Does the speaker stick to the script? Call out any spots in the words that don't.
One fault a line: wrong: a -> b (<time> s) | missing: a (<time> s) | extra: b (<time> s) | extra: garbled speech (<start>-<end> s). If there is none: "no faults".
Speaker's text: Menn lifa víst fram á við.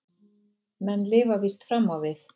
no faults